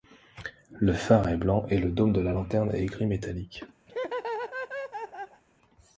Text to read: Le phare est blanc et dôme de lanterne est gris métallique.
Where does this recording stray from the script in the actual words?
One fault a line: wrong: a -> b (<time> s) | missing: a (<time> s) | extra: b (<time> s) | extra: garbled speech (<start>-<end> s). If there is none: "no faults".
extra: le (1.8 s)
extra: la (2.2 s)